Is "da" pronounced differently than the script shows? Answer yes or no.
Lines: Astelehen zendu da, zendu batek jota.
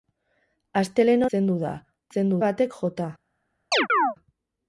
no